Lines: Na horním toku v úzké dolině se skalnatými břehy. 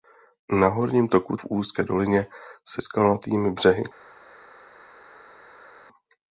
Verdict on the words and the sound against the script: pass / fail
pass